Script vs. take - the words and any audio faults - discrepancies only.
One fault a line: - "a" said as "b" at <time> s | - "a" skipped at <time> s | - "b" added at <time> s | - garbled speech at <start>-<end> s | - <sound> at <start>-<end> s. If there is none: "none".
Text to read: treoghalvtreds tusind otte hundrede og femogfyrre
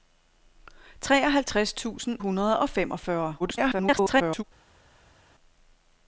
- "otte" skipped at 2.2 s
- garbled speech at 3.4-4.4 s